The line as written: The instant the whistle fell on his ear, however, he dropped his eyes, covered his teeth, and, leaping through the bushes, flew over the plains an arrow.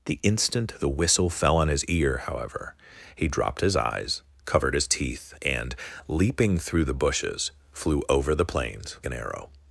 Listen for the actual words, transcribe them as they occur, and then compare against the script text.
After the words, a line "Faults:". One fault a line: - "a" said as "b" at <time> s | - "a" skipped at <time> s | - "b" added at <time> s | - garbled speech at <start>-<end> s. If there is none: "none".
The instant the whistle fell on his ear, however, he dropped his eyes, covered his teeth, and, leaping through the bushes, flew over the plains an arrow.
Faults:
none